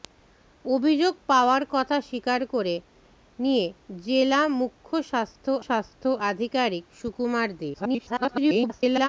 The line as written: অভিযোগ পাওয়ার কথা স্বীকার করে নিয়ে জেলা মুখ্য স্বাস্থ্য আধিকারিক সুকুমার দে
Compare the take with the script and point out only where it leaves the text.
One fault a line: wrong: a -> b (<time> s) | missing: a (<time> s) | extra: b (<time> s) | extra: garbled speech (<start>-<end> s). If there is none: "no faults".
extra: স্বাস্থ্য (5.7 s)
extra: garbled speech (7.7-9.1 s)